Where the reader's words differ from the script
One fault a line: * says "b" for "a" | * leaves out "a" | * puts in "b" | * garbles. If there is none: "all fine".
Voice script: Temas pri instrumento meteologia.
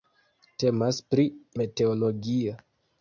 * leaves out "instrumento"